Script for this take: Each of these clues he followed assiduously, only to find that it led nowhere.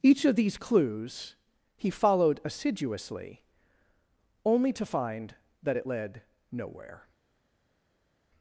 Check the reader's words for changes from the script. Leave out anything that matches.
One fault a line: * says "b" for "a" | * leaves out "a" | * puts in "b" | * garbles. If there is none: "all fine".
all fine